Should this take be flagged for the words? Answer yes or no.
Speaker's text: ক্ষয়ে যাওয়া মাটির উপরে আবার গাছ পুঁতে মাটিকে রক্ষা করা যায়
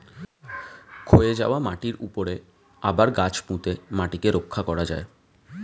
no